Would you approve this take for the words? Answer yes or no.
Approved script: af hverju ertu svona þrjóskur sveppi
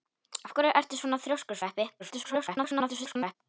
no